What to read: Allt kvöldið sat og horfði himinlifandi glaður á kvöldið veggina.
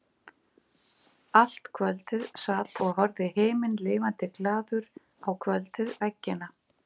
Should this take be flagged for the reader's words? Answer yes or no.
no